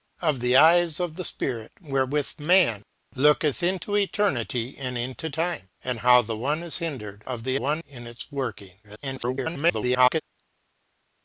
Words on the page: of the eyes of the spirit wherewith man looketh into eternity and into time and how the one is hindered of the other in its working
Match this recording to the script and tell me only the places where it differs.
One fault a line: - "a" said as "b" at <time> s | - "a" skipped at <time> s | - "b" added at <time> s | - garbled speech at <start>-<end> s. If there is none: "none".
- "other" said as "one" at 7.6 s
- garbled speech at 8.8-10.2 s